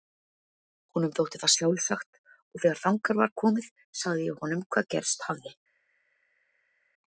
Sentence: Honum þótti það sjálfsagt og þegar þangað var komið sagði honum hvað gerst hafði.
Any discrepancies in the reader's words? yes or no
yes